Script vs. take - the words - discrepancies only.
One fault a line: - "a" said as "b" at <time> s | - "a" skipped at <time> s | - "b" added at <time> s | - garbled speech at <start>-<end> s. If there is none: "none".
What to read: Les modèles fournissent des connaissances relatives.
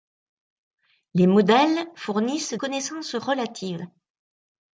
- "des" skipped at 2.5 s